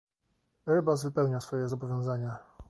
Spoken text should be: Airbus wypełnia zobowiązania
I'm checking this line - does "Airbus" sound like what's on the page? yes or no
yes